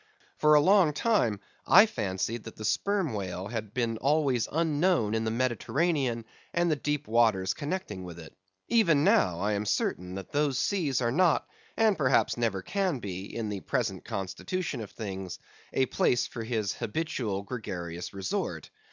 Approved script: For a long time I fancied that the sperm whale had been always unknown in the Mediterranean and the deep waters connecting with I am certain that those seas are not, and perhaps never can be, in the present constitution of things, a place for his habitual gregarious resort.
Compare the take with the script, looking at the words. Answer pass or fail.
fail